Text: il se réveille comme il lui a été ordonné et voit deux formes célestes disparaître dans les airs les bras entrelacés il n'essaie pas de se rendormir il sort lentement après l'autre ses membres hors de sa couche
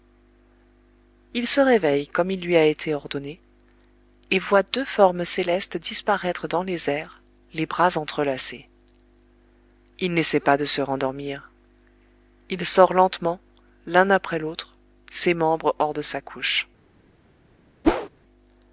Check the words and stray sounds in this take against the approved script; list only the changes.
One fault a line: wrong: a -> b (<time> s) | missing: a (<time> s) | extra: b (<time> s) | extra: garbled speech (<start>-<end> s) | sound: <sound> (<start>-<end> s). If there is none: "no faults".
extra: l'un (13.8 s)
sound: whoosh (17.8-18.1 s)